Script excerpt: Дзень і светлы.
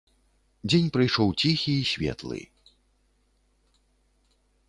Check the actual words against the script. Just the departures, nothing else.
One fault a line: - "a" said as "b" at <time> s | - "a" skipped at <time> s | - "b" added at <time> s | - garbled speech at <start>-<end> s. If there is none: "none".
- "прыйшоў ціхі" added at 0.9 s